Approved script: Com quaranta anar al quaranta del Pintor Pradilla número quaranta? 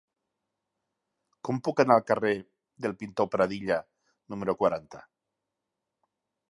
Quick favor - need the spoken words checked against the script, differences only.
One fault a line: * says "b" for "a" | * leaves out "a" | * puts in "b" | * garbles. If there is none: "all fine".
* says "puc" for "quaranta"
* says "carrer" for "quaranta"